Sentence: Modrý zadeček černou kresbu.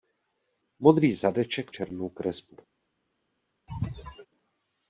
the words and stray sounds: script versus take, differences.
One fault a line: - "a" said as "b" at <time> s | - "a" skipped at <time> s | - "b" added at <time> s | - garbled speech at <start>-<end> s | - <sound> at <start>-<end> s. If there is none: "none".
- sneeze at 3.7-4.3 s